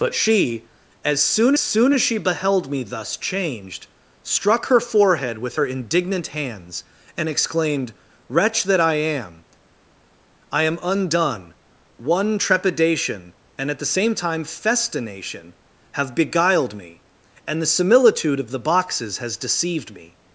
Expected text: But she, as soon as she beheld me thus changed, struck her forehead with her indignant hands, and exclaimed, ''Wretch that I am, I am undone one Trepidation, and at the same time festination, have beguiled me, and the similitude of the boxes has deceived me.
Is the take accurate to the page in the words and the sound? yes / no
no